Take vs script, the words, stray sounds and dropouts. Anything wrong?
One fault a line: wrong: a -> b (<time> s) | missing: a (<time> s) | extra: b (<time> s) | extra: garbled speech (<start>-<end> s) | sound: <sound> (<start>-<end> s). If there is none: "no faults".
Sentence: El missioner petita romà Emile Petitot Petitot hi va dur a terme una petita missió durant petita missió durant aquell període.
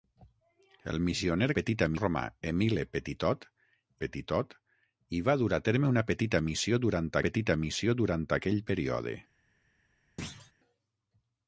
sound: thud (10.2-10.5 s)